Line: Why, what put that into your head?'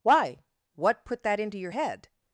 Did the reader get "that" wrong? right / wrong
right